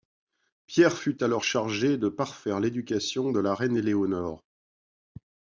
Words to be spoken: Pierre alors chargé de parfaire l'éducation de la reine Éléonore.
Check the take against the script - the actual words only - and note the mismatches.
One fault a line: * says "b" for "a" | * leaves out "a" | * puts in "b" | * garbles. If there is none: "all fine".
* puts in "fut"